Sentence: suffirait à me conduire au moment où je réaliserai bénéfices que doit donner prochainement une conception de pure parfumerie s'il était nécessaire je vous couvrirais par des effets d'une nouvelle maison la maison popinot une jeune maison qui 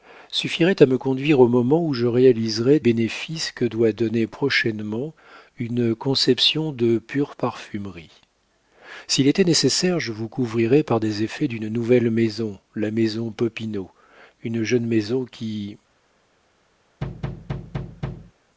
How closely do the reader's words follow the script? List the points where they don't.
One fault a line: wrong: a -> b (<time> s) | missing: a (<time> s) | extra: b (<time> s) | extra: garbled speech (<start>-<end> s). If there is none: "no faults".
no faults